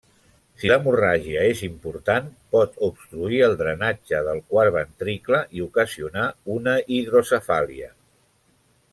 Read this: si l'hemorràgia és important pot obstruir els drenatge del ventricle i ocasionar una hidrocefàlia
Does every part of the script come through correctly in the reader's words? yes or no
no